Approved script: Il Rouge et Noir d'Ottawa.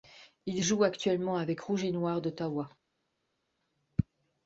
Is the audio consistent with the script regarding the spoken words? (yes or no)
no